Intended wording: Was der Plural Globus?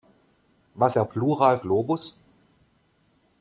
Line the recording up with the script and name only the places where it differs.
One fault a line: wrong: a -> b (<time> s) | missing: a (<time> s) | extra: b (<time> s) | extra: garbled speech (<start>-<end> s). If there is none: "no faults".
no faults